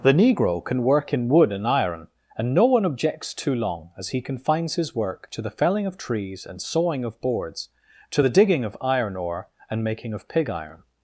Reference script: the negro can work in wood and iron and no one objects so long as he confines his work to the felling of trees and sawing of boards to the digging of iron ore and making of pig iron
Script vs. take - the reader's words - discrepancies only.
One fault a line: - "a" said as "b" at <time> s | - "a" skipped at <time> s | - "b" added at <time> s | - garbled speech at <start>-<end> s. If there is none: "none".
- "so" said as "too" at 3.4 s